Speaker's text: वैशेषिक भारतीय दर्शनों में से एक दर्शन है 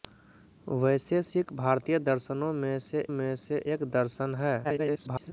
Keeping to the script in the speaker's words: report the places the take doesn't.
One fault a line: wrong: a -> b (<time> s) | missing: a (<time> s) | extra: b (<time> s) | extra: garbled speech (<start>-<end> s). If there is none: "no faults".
extra: में से (3.1 s)
extra: garbled speech (4.6-5.3 s)